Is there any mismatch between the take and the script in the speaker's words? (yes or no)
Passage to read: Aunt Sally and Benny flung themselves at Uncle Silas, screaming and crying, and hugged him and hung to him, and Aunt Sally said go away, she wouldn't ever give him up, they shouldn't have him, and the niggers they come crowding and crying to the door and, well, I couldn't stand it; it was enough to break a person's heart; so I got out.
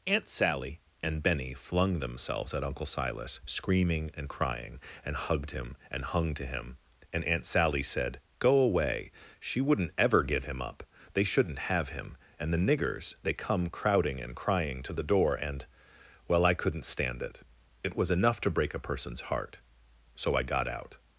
no